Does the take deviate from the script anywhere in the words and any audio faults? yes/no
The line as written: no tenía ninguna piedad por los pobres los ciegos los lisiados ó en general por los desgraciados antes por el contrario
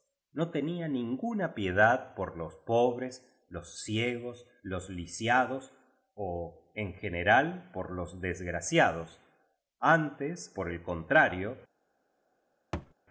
yes